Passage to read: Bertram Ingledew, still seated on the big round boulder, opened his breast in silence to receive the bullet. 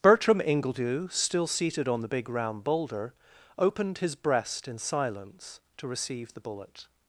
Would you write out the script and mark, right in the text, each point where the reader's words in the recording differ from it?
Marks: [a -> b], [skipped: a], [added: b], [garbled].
Bertram Ingledew, still seated on the big round boulder, opened his breast in silence to receive the bullet.